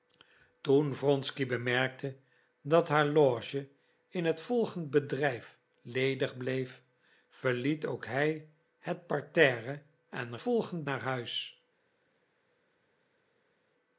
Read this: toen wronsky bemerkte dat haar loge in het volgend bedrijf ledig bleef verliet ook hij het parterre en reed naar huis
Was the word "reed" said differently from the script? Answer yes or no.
yes